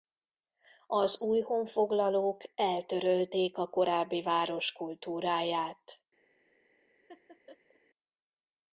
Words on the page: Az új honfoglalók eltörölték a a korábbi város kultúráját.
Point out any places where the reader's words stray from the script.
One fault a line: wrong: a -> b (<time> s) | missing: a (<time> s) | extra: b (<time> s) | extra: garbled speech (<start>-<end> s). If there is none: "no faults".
missing: a (3.7 s)